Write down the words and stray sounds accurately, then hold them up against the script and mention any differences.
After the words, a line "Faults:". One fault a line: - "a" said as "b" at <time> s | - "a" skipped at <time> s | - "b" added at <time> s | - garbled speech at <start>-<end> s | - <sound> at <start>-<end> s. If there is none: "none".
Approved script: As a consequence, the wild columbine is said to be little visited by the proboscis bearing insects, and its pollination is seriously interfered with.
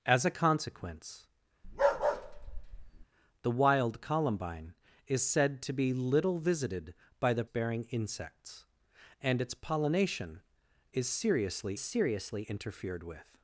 As a consequence, the wild columbine is said to be little visited by the bearing insects, and its pollination is seriously seriously interfered with.
Faults:
- bark at 1.6-3.1 s
- "proboscis" skipped at 7.4 s
- "seriously" added at 11.8 s